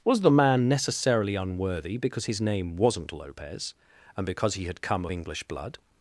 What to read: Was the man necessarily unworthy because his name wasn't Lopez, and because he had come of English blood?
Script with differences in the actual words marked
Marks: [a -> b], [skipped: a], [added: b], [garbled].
Was the man necessarily unworthy because his name wasn't Lopez, and because he had come of English blood?